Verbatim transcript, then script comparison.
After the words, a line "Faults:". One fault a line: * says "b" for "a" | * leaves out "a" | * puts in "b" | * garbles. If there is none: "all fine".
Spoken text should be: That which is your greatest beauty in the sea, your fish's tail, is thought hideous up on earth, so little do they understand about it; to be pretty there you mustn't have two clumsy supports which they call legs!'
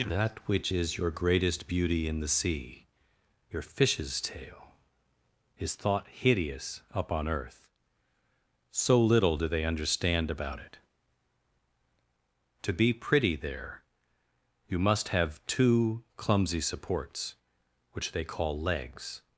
That which is your greatest beauty in the sea, your fish's tail, is thought hideous up on earth, so little do they understand about it; to be pretty there you must have two clumsy supports which they call legs!'
Faults:
* says "must" for "mustn't"